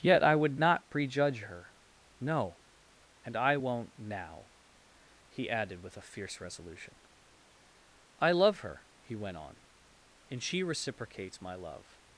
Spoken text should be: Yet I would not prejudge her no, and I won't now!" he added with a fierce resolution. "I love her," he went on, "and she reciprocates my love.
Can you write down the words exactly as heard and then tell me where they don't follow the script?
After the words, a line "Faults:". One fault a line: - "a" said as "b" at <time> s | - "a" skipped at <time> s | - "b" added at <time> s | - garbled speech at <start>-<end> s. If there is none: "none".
Yet I would not prejudge her no, and I won't now!" he added with a fierce resolution. "I love her," he went on, "and she reciprocates my love.
Faults:
none